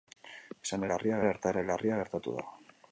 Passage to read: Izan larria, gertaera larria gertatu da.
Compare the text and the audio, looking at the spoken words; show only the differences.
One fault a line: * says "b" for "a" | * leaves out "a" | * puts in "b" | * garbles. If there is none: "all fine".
all fine